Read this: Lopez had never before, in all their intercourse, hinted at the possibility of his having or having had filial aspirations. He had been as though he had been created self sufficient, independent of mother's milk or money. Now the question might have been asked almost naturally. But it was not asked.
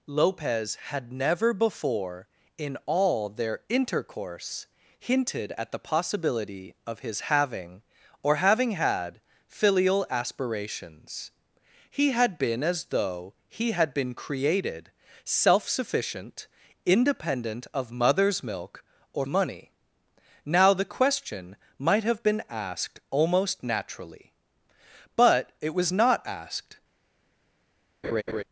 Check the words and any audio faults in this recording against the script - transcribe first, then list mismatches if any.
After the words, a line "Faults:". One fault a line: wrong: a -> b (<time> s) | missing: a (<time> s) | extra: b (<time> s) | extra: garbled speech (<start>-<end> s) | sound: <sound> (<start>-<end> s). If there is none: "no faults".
Lopez had never before, in all their intercourse, hinted at the possibility of his having or having had filial aspirations. He had been as though he had been created self sufficient, independent of mother's milk or money. Now the question might have been asked almost naturally. But it was not asked.
Faults:
sound: laugh (28.0-28.4 s)